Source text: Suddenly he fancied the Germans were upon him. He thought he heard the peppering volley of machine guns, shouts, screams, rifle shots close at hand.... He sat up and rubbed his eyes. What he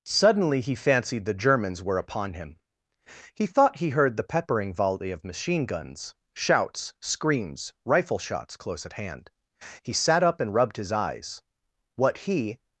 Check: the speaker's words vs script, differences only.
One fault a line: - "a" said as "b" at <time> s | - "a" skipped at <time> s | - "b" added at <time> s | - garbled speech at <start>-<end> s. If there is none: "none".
none